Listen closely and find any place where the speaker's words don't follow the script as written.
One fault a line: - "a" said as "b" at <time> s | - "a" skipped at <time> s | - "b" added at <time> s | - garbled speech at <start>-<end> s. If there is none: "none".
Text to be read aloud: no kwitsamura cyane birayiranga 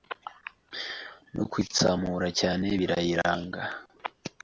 none